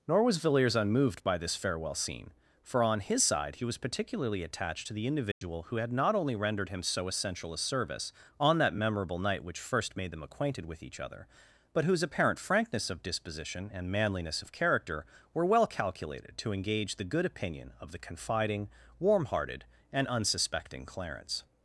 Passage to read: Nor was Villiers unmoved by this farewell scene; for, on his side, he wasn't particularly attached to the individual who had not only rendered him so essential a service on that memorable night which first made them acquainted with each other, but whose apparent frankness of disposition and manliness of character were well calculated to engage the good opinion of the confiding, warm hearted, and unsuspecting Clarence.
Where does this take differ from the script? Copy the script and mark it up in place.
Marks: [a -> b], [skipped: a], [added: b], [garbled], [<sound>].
Nor was Villiers unmoved by this farewell scene; for, on his side, he [wasn't -> was] particularly attached to the individual [dropout] who had not only rendered him so essential a service on that memorable night which first made them acquainted with each other, but whose apparent frankness of disposition and manliness of character were well calculated to engage the good opinion of the confiding, warm hearted, and unsuspecting Clarence.